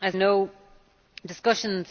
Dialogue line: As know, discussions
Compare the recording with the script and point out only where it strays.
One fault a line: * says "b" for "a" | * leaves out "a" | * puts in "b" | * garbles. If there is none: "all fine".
all fine